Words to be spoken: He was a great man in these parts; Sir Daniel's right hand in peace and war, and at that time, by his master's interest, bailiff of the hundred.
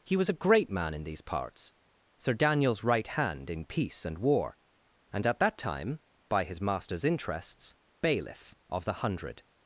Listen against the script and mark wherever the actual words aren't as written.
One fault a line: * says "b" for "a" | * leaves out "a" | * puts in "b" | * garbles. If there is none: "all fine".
* says "interests" for "interest"